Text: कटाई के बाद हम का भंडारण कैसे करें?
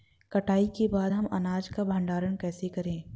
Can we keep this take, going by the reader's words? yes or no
no